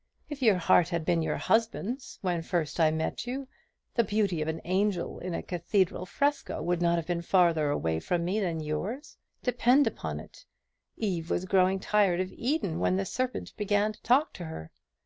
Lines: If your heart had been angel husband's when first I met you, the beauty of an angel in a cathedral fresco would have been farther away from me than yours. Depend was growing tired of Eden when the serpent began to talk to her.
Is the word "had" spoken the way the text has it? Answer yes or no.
yes